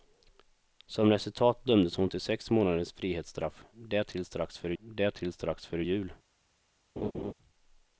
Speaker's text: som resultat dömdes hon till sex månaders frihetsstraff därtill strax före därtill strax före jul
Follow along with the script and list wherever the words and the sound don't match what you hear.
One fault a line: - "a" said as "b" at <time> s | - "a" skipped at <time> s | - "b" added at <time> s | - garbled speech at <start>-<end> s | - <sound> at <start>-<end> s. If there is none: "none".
- laugh at 7.0-7.3 s